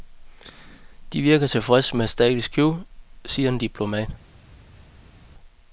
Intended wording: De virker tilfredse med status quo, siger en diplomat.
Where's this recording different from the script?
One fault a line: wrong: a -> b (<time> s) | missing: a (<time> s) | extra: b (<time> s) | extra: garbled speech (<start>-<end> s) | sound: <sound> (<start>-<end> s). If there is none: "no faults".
no faults